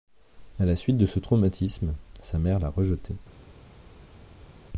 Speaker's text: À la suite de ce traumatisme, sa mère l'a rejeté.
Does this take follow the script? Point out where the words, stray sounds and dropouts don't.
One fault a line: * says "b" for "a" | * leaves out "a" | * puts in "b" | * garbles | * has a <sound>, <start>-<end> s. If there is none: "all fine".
all fine